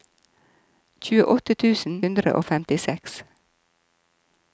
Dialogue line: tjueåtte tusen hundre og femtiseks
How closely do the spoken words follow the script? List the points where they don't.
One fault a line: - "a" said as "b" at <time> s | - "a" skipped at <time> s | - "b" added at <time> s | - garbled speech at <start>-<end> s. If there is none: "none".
none